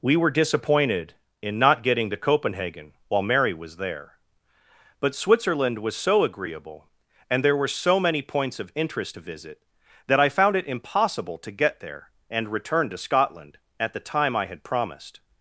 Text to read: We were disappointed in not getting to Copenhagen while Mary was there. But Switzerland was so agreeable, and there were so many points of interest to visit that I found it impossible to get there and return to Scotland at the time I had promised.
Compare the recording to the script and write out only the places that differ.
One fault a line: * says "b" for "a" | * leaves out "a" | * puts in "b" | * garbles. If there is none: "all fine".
all fine